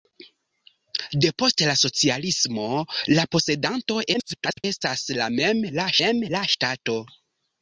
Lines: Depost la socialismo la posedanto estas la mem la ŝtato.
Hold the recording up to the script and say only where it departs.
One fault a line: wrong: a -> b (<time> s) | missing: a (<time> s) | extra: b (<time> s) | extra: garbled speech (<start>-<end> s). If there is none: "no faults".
extra: garbled speech (4.1-4.6 s)
extra: mem la (6.0 s)